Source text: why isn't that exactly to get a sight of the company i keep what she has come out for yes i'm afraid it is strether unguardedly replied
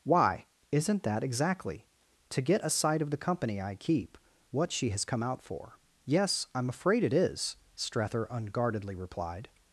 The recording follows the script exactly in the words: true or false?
true